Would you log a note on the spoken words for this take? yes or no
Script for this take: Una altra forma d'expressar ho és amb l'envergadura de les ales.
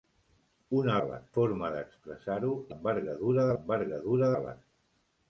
yes